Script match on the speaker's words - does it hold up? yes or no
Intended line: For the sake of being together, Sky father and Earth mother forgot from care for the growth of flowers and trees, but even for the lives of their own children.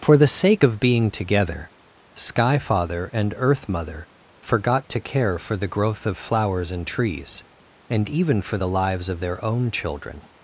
no